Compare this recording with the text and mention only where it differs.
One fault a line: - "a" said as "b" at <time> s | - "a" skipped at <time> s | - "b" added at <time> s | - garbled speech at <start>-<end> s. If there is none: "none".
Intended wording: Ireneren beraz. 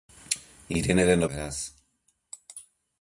none